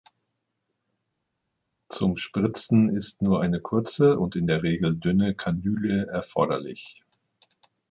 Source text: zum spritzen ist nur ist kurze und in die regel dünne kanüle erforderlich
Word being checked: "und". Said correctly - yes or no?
yes